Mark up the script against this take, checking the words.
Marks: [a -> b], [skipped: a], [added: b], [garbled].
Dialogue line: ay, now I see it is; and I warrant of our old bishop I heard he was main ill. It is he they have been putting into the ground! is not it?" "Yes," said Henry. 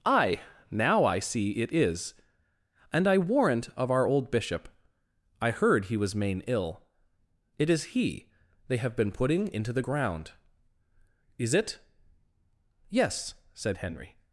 ay, now I see it is; and I warrant of our old bishop I heard he was main ill. It is he they have been putting into the ground! is [skipped: not] it?" "Yes," said Henry.